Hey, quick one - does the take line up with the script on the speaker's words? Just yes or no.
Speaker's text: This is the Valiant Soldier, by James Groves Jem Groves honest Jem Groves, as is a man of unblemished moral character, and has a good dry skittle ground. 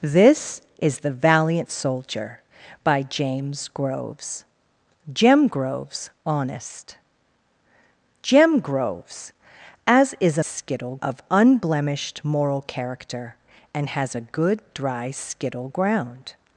no